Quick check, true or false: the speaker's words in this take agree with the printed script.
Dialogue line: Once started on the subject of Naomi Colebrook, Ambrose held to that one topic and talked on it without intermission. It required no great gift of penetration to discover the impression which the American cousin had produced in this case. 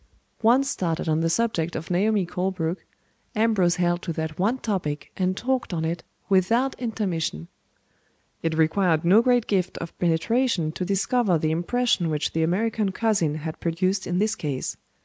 true